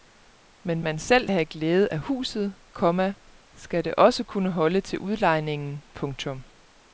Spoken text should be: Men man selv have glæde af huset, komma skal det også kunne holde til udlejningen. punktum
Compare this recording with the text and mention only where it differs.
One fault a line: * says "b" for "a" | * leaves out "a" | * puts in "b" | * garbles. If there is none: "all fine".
all fine